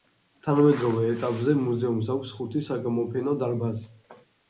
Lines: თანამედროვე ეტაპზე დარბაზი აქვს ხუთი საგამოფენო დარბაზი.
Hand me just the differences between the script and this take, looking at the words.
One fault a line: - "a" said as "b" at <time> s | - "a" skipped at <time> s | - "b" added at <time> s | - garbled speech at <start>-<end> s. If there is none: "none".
- "დარბაზი" said as "მუზეუმს" at 1.6 s